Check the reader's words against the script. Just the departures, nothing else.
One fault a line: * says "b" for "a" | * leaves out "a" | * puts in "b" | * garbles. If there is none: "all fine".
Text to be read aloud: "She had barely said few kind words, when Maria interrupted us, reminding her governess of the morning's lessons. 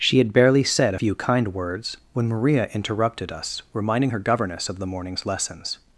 all fine